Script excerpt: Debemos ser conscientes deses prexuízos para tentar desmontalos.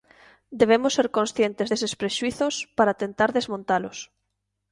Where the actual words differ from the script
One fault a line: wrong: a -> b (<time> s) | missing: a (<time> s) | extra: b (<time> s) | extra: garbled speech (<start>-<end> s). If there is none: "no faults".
no faults